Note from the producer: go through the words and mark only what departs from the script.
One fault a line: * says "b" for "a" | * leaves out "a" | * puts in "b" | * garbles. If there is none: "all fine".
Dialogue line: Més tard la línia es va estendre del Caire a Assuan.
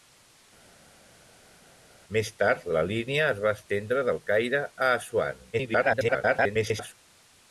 * garbles